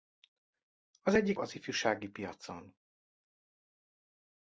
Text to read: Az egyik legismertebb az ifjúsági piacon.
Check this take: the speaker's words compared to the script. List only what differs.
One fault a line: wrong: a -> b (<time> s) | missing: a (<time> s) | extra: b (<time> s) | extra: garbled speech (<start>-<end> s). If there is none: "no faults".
missing: legismertebb (1.4 s)